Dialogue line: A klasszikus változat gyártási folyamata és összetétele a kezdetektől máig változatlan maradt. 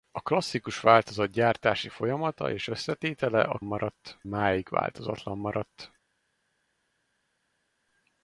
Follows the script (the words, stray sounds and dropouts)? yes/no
no